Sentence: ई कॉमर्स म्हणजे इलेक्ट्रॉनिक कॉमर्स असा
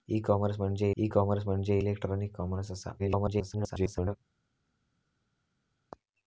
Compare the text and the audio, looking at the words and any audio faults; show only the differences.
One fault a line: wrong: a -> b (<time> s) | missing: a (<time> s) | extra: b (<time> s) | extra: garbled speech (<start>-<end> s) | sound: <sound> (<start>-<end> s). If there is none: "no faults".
extra: ई कॉमर्स म्हणजे (1.0 s)
extra: garbled speech (3.0-4.2 s)